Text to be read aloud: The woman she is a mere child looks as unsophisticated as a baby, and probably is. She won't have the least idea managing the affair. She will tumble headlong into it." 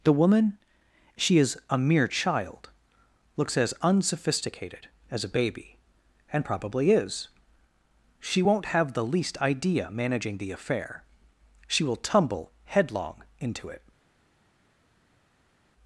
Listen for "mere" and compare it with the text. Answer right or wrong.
right